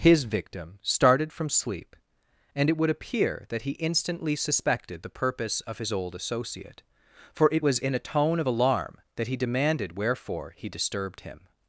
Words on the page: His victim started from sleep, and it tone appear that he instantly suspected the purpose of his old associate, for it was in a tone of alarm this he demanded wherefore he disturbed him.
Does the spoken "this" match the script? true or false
false